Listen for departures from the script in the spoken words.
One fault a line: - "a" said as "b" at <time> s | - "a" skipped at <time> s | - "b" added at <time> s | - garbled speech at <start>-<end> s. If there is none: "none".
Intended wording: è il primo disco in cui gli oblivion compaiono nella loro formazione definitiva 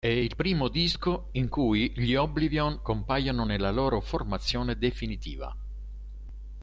none